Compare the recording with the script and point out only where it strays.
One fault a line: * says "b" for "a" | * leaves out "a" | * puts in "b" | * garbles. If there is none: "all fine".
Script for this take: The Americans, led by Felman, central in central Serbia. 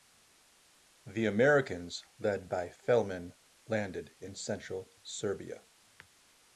* says "landed" for "central"